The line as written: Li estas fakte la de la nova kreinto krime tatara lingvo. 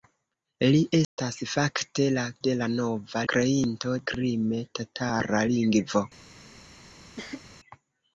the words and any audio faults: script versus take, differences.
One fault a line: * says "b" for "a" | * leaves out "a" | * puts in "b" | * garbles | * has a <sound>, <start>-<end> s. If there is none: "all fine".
* has a dropout, 1.0-1.2 s
* has a cough, 7.2-7.4 s